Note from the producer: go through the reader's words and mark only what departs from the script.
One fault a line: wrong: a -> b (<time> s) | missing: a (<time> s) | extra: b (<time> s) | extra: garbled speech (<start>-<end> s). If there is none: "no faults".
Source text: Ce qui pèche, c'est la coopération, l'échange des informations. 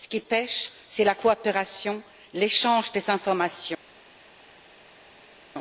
no faults